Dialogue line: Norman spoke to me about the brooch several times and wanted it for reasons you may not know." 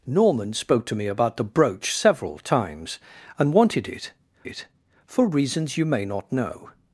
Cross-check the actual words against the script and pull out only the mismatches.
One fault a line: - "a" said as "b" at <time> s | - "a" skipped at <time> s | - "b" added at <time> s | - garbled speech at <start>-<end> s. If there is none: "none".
- "it" added at 4.4 s